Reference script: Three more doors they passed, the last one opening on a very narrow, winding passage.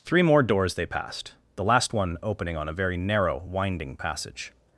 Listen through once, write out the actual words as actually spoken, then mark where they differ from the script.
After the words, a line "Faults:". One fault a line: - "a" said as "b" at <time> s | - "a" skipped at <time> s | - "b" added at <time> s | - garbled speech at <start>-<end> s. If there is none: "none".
Three more doors they passed, the last one opening on a very narrow, winding passage.
Faults:
none